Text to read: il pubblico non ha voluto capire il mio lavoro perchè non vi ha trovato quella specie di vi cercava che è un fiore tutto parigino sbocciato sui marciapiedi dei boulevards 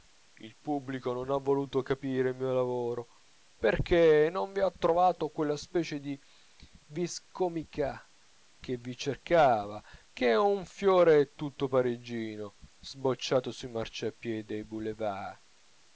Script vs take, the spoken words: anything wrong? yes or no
yes